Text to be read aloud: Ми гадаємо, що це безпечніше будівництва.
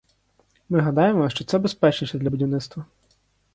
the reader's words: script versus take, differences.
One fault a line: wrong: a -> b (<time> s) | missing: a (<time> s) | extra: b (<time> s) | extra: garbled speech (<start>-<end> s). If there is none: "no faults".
extra: для (2.2 s)